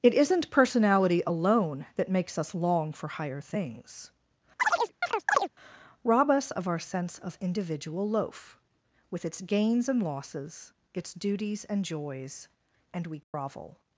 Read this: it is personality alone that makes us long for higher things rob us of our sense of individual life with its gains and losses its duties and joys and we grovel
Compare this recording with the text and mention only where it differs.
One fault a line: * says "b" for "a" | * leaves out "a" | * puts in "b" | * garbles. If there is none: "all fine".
* says "isn't" for "is"
* says "loaf" for "life"